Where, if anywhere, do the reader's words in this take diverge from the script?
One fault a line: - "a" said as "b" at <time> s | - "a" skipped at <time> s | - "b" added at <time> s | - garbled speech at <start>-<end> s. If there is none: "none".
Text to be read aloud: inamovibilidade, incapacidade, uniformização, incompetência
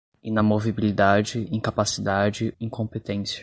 - "uniformização" skipped at 2.5 s